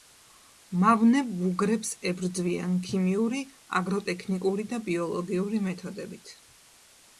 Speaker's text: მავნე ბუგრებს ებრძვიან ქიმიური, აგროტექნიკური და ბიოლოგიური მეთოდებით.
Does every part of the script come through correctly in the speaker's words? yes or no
yes